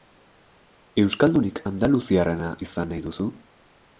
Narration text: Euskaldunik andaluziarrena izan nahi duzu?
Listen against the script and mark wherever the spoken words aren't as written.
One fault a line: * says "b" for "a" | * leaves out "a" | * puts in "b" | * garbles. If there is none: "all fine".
all fine